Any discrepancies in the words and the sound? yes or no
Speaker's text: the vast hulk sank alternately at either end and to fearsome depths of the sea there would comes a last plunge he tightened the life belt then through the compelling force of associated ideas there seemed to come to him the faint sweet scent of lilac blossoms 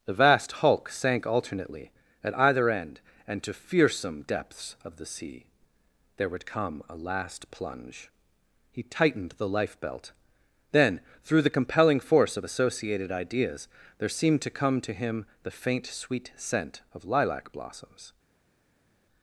yes